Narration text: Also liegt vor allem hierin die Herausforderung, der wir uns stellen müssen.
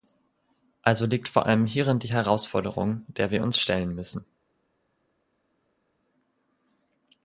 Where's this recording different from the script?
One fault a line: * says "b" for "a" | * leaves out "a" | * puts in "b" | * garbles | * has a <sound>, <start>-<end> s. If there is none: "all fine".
all fine